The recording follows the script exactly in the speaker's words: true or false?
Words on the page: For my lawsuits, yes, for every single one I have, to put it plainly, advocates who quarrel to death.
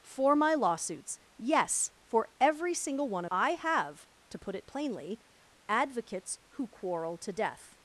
true